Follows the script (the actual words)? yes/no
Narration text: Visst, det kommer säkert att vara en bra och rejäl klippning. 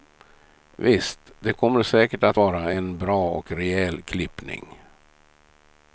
yes